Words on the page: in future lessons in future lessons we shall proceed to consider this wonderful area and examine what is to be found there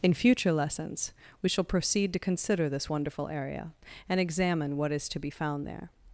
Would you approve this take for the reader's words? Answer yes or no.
no